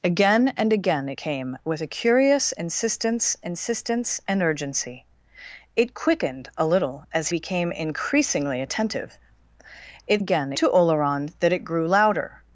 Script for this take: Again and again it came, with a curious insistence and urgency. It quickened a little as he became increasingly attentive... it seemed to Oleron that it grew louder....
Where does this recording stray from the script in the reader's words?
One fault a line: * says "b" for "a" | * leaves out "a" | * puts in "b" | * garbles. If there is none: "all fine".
* puts in "insistence"
* leaves out "he"
* says "again" for "seemed"